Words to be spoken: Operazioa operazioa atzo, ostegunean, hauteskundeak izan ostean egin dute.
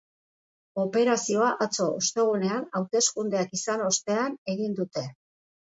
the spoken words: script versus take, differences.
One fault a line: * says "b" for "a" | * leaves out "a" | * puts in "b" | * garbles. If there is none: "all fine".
* leaves out "operazioa"